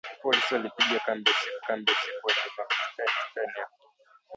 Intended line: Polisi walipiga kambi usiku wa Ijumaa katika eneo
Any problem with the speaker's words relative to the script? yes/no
yes